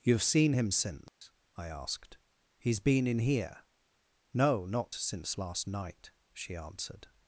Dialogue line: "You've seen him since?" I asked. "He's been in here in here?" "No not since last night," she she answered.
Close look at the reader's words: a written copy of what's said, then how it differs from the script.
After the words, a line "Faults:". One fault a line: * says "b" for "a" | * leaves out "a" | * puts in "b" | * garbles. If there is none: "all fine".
"You've seen him since?" I asked. "He's been in here?" "No not since last night," she answered.
Faults:
* leaves out "in here"
* leaves out "she"